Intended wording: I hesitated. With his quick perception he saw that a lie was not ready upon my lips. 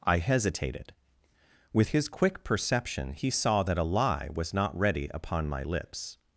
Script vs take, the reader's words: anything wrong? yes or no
no